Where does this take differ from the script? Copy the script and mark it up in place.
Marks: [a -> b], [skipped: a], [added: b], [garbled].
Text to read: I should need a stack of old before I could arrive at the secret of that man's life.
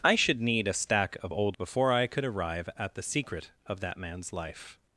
I should need a stack of old before I could arrive at the secret of that man's life.